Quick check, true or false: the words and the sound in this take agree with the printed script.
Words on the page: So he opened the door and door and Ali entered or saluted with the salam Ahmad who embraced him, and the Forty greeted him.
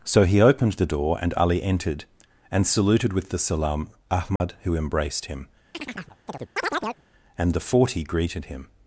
false